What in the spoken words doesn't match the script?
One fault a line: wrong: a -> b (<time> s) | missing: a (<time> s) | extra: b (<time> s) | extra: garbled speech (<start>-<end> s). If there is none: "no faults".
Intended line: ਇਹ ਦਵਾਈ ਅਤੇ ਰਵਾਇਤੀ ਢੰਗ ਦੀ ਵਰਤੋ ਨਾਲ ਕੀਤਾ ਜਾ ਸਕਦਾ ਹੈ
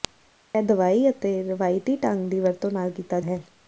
missing: ਜਾ ਸਕਦਾ (3.2 s)